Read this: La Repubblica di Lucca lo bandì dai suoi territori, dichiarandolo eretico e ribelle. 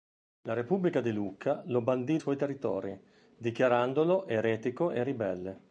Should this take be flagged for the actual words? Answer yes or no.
yes